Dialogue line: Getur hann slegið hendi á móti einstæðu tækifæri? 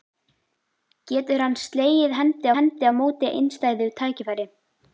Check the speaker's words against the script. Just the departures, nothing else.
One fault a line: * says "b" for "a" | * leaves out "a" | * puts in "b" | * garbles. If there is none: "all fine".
* puts in "hendi"